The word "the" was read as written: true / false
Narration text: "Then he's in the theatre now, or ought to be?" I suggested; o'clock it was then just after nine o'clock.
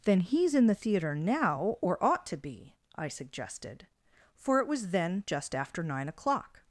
true